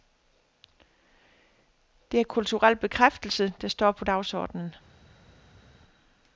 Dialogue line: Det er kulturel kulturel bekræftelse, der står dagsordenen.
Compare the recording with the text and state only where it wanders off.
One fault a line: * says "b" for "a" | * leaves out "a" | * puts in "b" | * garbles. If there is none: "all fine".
* leaves out "kulturel"
* puts in "på"